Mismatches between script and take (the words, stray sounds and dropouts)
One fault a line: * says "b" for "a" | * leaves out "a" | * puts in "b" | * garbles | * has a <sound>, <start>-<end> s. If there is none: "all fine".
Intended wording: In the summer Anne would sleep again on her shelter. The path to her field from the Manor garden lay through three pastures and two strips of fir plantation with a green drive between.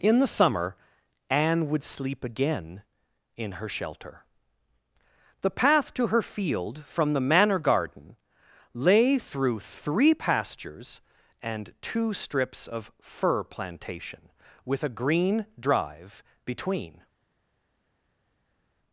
* says "in" for "on"